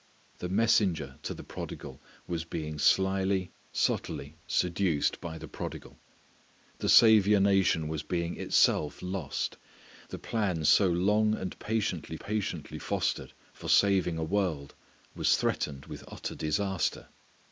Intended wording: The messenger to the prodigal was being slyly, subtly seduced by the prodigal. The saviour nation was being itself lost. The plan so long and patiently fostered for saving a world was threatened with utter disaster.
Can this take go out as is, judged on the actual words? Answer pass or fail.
fail